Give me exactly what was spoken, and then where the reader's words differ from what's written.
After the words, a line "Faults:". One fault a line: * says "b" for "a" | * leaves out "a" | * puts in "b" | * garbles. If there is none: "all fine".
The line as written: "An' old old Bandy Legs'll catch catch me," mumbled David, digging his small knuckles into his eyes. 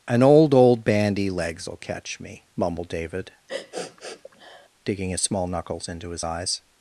"An' old old Bandy Legs'll catch me," mumbled David, digging his small knuckles into his eyes.
Faults:
* leaves out "catch"